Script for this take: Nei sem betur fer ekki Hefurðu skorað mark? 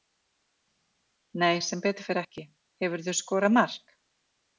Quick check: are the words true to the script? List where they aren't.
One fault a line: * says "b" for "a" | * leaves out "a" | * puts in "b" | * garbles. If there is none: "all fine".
all fine